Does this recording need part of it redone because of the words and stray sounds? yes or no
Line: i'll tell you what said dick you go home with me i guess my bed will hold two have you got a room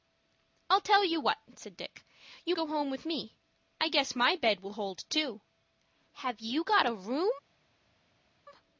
no